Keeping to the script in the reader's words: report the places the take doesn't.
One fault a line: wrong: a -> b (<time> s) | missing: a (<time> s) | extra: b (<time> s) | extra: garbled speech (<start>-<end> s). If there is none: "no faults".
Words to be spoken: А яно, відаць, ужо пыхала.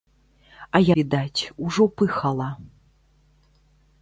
missing: яно (0.8 s)